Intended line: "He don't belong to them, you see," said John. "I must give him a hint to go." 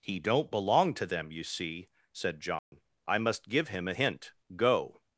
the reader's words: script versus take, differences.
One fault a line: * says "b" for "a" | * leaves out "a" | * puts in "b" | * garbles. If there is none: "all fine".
* leaves out "to"